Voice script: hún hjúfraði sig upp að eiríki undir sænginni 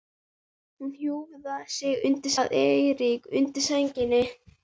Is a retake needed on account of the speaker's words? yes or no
yes